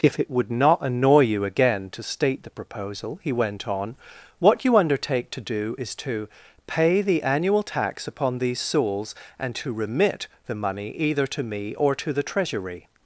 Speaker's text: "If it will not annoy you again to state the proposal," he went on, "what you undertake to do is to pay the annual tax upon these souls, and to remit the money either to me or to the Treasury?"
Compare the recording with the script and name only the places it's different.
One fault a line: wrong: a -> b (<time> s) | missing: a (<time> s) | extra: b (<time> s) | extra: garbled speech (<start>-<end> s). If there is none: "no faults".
wrong: will -> would (0.3 s)